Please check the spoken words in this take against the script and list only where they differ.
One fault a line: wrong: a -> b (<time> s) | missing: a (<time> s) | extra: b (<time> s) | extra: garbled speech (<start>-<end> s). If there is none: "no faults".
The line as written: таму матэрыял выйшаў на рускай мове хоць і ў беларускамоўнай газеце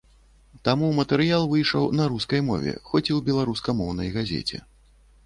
no faults